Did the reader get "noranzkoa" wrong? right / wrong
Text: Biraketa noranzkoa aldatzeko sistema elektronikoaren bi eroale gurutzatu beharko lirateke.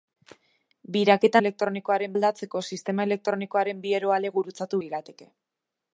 wrong